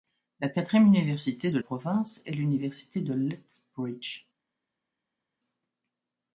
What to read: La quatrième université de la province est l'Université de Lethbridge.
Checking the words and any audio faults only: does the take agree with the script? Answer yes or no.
no